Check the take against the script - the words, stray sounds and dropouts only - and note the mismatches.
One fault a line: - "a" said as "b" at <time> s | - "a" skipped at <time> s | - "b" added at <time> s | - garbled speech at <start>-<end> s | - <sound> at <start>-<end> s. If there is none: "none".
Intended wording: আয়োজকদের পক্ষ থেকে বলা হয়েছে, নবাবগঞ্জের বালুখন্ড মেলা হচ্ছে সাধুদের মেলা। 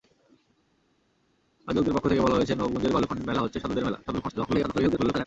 - garbled speech at 4.0-5.3 s